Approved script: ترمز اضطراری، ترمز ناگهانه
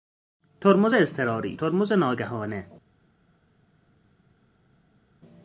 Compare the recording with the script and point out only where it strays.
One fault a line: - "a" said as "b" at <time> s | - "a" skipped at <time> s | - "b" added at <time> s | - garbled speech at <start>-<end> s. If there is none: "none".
none